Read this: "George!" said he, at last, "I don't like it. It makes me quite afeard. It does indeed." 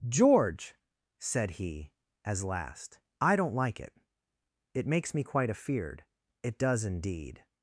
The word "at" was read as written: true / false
false